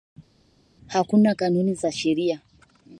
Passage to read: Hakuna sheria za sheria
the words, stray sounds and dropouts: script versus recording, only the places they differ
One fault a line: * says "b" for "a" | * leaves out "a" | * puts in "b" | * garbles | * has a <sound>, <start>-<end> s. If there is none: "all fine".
* says "kanuni" for "sheria"